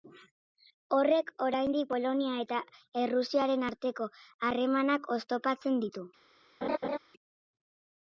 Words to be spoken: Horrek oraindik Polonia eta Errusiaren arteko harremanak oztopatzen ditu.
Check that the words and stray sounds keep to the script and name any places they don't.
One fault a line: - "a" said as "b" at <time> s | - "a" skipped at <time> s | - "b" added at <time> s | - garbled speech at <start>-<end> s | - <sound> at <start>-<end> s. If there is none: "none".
- laugh at 6.6-7.0 s